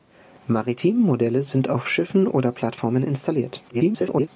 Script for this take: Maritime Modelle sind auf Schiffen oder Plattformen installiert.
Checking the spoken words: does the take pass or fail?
fail